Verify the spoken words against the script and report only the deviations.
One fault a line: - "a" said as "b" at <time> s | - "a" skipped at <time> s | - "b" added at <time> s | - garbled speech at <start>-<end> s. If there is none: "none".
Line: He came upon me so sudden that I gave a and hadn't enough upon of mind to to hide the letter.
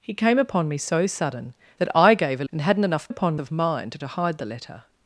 none